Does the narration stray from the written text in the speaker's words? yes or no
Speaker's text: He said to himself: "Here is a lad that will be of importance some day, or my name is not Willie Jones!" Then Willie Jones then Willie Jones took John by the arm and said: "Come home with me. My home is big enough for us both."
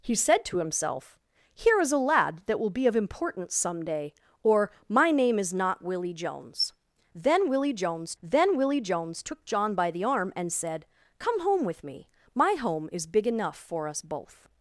no